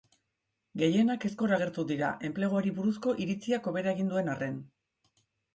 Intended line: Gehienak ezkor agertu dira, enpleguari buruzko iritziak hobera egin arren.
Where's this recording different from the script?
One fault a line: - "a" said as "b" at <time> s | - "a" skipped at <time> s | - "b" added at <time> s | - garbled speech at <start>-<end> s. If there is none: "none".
- "duen" added at 4.1 s